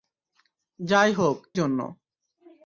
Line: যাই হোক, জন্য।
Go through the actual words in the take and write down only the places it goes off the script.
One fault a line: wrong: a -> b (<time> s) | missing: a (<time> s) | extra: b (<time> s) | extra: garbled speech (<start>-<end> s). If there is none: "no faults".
no faults